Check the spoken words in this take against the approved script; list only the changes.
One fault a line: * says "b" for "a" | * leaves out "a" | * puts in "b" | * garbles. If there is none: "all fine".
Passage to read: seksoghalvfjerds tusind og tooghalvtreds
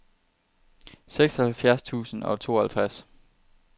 all fine